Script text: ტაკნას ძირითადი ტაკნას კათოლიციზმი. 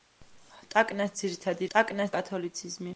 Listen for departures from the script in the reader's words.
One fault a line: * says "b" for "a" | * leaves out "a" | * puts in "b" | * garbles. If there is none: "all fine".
all fine